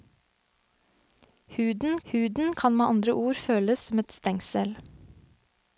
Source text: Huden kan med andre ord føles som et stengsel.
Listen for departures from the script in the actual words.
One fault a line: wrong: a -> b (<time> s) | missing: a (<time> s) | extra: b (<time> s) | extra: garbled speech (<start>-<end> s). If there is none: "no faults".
extra: huden (2.1 s)